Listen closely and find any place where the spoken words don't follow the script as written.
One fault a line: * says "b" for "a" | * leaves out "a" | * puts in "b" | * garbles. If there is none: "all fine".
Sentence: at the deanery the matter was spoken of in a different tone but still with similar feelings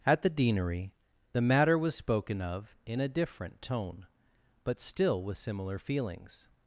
all fine